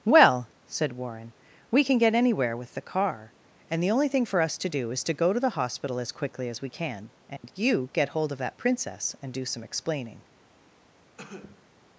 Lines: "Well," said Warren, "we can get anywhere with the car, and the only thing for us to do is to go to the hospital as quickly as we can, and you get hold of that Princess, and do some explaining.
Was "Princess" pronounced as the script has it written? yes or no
yes